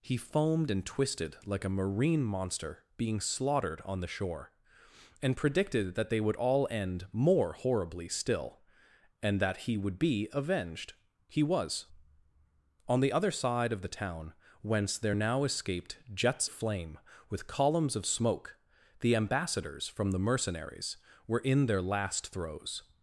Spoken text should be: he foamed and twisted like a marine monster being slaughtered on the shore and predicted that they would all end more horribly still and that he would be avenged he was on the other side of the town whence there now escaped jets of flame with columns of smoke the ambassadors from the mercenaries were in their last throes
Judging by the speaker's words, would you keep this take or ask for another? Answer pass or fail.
fail